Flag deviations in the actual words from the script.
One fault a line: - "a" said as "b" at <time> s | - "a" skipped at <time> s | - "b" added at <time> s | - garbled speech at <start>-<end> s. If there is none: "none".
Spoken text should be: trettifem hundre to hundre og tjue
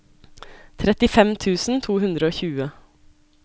- "hundre" said as "tusen" at 1.4 s